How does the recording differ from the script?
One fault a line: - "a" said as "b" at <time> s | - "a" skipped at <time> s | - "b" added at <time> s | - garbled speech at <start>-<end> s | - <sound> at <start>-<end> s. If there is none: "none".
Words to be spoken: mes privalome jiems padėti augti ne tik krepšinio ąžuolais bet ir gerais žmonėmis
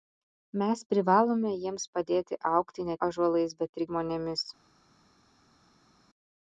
- "tik krepšinio" skipped at 3.0 s
- "gerais" skipped at 3.8 s